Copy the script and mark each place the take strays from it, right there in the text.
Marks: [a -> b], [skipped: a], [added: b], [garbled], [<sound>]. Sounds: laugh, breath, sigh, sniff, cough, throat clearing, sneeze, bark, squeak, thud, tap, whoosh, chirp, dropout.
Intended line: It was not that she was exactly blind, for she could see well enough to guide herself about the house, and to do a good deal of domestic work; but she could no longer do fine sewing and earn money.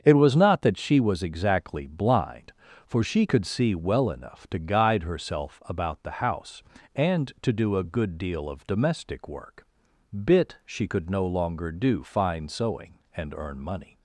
It was not that she was exactly blind, for she could see well enough to guide herself about the house, and to do a good deal of domestic work; [but -> bit] she could no longer do fine sewing and earn money.